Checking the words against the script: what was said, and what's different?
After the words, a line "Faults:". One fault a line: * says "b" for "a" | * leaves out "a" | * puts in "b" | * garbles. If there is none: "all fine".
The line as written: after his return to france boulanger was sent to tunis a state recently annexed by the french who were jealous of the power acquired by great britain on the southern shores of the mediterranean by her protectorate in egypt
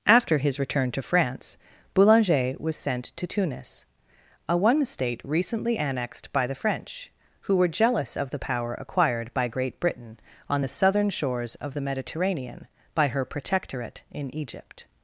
after his return to france boulanger was sent to tunis a one state recently annexed by the french who were jealous of the power acquired by great britain on the southern shores of the mediterranean by her protectorate in egypt
Faults:
* puts in "one"